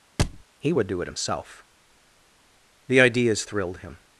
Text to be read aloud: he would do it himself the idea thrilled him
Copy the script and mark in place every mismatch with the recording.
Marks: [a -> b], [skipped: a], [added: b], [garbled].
he would do it himself the [idea -> ideas] thrilled him